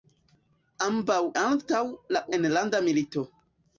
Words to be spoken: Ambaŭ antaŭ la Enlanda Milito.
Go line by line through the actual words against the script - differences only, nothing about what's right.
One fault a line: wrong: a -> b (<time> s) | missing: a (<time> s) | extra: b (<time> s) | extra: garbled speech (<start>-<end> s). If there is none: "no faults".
no faults